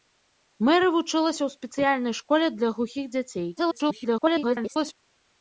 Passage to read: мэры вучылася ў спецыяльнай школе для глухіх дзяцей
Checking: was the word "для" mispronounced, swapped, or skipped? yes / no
no